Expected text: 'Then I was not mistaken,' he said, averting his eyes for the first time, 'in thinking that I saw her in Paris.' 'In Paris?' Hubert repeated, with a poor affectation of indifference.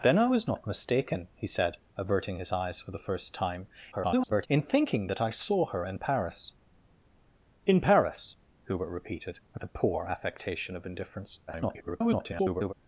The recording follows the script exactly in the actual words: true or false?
false